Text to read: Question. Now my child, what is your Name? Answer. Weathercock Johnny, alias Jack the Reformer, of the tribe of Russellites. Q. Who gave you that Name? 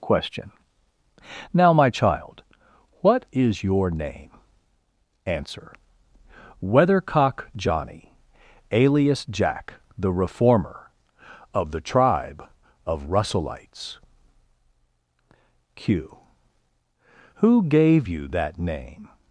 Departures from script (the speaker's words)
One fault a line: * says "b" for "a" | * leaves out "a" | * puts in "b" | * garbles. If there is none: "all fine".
all fine